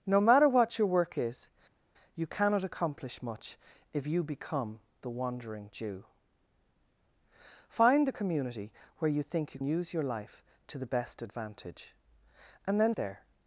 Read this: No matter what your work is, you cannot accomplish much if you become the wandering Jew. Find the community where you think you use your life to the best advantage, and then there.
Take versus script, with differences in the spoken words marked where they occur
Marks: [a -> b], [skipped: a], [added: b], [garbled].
No matter what your work is, you cannot accomplish much if you become the wandering Jew. Find the community where you think you use your life to the best advantage, and then there.